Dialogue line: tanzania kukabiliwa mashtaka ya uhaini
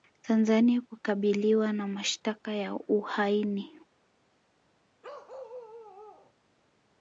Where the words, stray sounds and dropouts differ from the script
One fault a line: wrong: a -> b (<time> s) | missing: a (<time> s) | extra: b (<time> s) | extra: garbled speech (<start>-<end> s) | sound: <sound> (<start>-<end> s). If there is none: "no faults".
extra: na (1.7 s)
sound: bark (5.0-6.3 s)